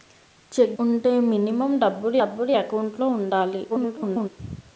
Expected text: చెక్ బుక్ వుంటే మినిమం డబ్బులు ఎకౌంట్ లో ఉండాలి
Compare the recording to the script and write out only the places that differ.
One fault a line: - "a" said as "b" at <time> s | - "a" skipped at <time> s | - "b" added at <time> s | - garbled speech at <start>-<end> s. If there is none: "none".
- "బుక్" skipped at 0.8 s
- "డబ్బులు" added at 2.2 s
- garbled speech at 3.7-4.3 s